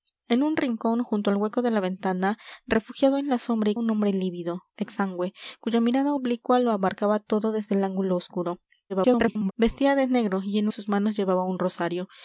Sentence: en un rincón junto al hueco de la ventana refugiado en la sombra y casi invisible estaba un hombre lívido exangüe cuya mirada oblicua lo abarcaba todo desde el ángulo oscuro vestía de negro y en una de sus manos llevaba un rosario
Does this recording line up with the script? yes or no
no